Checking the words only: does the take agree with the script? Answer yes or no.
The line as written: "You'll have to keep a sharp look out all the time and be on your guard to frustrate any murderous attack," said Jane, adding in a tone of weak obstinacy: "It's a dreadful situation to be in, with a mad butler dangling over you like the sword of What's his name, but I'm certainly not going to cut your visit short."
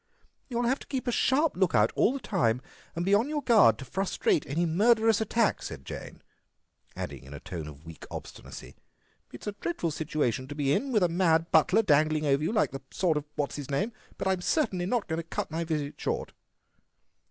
no